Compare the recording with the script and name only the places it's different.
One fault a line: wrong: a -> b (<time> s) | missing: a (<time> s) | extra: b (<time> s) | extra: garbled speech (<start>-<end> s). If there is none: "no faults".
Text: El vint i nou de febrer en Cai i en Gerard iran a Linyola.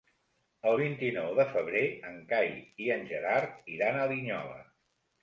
no faults